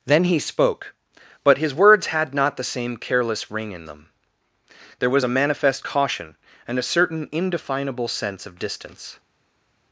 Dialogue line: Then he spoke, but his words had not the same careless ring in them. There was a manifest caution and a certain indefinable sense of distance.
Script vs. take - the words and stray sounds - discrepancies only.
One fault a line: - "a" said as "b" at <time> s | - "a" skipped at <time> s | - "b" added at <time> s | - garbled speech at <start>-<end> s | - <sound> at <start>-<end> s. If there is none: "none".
none